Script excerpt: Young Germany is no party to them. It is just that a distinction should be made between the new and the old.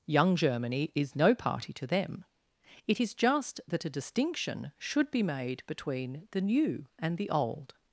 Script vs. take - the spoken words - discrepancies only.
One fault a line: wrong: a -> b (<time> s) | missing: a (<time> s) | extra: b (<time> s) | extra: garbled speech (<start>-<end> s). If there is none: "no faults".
no faults